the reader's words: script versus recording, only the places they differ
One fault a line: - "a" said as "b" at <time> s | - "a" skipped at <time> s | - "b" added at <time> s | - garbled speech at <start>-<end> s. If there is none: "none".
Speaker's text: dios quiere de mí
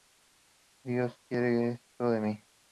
- "esto" added at 1.7 s